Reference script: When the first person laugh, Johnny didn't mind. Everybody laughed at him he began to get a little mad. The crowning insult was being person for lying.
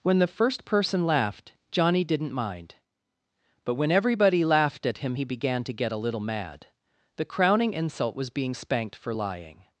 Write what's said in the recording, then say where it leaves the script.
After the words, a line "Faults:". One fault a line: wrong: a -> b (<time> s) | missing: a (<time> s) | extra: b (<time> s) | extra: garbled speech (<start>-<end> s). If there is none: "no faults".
When the first person laughed, Johnny didn't mind. But when everybody laughed at him he began to get a little mad. The crowning insult was being spanked for lying.
Faults:
wrong: laugh -> laughed (1.1 s)
extra: But when (3.6 s)
wrong: person -> spanked (8.5 s)